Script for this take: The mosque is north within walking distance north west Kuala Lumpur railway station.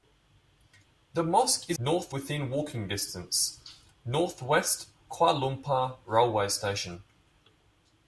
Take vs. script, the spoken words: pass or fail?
pass